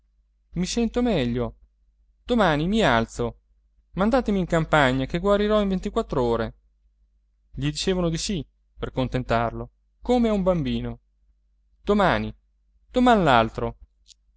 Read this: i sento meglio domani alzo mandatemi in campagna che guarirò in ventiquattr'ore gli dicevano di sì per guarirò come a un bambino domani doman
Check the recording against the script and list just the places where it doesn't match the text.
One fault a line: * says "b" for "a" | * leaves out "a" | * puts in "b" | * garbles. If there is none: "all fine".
* puts in "mi"
* says "contentarlo" for "guarirò"